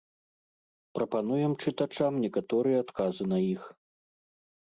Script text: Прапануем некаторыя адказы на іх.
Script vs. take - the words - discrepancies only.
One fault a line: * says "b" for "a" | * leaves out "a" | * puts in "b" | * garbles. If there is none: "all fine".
* puts in "чытачам"